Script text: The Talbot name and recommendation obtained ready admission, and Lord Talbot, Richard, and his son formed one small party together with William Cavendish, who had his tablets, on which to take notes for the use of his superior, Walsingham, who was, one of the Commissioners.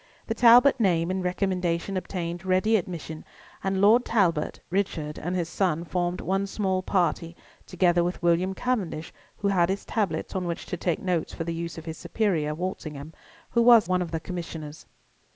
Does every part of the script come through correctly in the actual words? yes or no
yes